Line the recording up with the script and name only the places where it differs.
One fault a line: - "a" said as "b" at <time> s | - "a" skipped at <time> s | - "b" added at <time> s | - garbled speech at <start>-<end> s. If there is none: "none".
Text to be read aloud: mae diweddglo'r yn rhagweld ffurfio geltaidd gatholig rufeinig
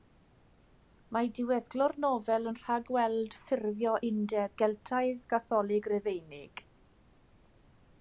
- "nofel" added at 2.0 s
- "undeb" added at 4.1 s